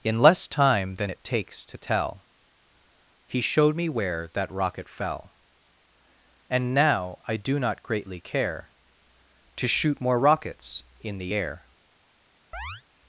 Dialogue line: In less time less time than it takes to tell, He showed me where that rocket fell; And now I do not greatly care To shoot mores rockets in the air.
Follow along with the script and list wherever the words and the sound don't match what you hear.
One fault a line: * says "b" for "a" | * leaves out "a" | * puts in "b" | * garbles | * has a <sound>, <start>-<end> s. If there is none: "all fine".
* leaves out "less time"
* says "more" for "mores"
* has a chirp, 12.5-12.8 s